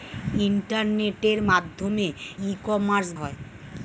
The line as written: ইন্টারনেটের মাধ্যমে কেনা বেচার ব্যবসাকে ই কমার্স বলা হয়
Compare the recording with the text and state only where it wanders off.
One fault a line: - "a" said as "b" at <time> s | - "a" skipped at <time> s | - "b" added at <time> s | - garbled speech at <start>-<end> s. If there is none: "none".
- "কেনা বেচার ব্যবসাকে" skipped at 2.1 s
- "বলা" skipped at 3.1 s